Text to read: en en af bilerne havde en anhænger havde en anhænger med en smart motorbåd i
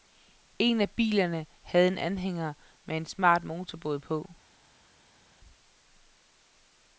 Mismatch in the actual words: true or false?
true